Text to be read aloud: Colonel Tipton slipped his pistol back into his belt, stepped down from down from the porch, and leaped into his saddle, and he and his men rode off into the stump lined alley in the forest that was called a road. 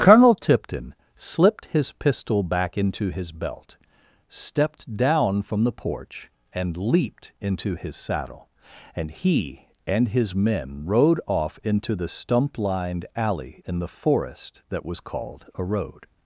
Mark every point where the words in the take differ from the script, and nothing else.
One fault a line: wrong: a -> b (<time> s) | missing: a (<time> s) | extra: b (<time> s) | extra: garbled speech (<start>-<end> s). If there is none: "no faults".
missing: down from (5.6 s)